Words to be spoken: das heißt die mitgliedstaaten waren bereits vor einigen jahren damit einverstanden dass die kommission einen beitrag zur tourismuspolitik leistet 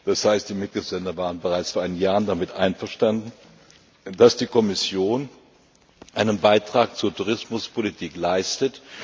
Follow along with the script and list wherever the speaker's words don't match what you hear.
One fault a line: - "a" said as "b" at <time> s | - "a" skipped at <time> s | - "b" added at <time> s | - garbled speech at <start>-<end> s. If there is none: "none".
none